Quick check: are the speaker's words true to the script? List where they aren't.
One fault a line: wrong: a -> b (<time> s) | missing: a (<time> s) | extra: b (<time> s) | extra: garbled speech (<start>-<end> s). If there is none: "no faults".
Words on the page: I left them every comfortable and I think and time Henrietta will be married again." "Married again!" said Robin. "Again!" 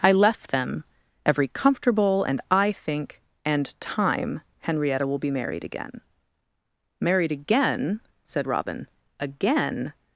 no faults